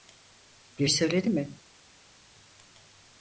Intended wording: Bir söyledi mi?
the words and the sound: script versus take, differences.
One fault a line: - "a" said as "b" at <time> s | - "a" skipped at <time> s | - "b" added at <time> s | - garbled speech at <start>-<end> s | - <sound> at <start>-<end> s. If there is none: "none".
none